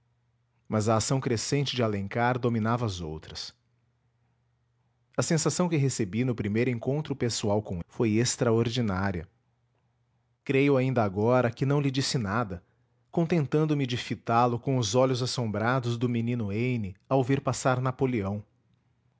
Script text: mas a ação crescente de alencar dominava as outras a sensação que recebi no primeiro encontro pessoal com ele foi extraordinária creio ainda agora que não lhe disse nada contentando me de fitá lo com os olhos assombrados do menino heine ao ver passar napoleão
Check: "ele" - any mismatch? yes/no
yes